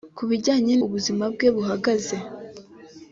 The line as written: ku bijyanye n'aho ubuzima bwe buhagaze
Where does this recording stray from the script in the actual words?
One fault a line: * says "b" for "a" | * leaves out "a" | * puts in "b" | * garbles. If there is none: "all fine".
* leaves out "n'aho"